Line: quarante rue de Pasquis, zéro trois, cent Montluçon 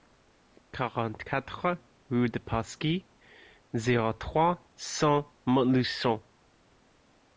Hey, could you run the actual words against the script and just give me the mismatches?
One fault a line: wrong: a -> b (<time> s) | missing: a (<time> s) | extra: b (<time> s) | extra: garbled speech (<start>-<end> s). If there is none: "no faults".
extra: quatre (1.2 s)